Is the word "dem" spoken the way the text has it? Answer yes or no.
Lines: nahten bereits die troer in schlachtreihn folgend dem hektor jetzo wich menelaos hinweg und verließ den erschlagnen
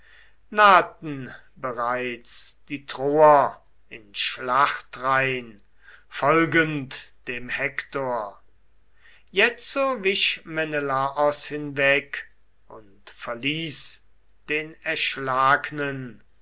yes